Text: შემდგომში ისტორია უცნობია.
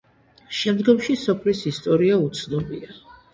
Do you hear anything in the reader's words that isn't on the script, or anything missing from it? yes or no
yes